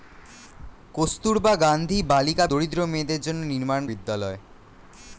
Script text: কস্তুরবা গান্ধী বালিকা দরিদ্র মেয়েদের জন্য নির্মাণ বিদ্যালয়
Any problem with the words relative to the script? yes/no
no